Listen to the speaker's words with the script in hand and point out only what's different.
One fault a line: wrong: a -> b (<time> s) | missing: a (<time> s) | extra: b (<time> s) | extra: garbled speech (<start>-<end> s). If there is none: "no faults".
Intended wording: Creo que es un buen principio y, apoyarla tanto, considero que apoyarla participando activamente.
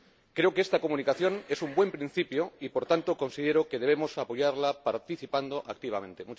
extra: esta Comunicación (0.6 s)
wrong: apoyarla -> por (2.7 s)
extra: debemos (3.8 s)